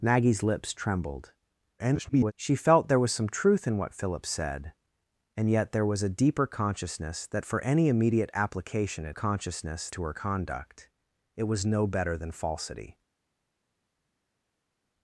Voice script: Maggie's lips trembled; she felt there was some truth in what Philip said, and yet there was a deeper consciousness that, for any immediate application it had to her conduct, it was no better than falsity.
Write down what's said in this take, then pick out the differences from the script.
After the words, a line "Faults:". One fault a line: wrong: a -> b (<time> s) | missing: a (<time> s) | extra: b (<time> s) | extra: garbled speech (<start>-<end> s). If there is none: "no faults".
Maggie's lips trembled; [garbled] she felt there was some truth in what Philip said, and yet there was a deeper consciousness that, for any immediate application it consciousness to her conduct, it was no better than falsity.
Faults:
extra: garbled speech (1.8-2.3 s)
wrong: had -> consciousness (9.1 s)